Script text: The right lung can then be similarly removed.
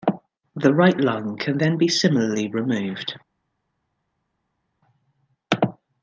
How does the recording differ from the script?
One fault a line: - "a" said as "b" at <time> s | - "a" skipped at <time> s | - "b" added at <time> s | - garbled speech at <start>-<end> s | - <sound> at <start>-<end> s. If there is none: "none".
none